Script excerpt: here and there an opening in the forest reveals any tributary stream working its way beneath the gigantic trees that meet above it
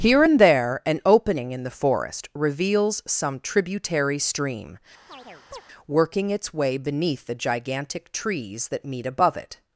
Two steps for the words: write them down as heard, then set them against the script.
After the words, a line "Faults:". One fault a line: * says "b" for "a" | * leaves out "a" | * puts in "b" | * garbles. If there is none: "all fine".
here and there an opening in the forest reveals some tributary stream working its way beneath the gigantic trees that meet above it
Faults:
* says "some" for "any"